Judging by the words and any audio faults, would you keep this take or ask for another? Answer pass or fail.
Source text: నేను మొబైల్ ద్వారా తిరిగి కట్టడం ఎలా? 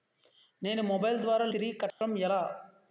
fail